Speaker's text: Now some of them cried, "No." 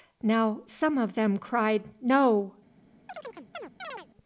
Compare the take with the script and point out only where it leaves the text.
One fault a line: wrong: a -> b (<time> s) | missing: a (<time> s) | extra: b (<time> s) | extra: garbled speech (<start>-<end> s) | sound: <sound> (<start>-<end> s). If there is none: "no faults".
sound: chirp (3.1-4.1 s)